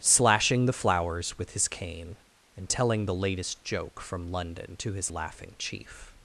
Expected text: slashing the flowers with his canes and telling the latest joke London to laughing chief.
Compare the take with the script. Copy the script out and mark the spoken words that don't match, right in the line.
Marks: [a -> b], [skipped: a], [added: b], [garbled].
slashing the flowers with his [canes -> cane] and telling the latest joke [added: from] London to [added: his] laughing chief.